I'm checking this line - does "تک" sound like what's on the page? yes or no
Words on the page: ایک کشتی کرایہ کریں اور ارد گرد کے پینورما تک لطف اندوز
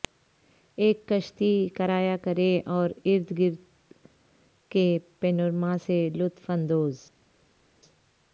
no